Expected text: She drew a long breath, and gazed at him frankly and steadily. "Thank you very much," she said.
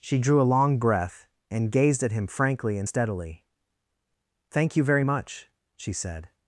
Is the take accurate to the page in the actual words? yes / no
yes